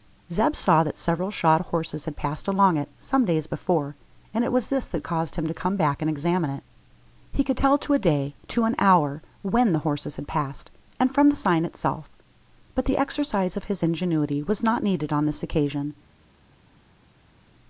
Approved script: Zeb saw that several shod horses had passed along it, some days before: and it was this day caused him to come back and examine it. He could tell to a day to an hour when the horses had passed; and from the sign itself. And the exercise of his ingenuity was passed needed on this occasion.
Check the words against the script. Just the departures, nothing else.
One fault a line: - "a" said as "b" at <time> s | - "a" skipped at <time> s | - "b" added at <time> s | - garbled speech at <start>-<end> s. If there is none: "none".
- "day" said as "that" at 4.9 s
- "And" said as "But" at 12.7 s
- "passed" said as "not" at 14.6 s